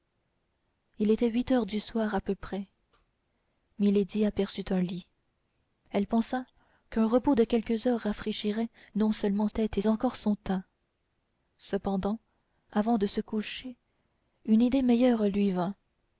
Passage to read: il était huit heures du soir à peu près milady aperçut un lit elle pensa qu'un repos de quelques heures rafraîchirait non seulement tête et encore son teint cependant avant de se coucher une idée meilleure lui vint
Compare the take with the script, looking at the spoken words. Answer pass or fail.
pass